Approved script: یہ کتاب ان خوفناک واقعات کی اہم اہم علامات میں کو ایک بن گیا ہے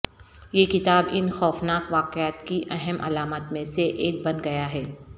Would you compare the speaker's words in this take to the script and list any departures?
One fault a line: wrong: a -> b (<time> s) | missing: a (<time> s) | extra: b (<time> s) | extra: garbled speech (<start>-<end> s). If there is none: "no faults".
missing: اہم (3.0 s)
wrong: کو -> سے (3.7 s)